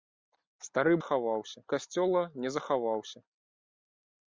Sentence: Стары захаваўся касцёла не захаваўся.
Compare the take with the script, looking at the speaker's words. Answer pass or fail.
pass